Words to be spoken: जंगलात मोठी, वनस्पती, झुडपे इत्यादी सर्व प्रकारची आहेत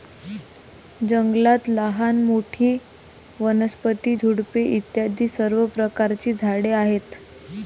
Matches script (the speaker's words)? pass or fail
fail